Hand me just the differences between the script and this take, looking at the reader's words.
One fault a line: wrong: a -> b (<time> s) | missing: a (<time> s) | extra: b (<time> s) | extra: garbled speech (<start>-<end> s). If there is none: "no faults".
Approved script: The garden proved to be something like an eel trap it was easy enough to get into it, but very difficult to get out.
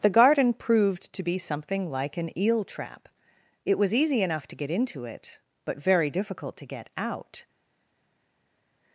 no faults